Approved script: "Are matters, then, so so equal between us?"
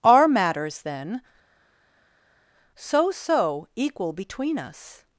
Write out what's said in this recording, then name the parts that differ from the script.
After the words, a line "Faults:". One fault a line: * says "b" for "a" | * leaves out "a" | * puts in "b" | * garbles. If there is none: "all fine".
"Are matters, then, so so equal between us?"
Faults:
all fine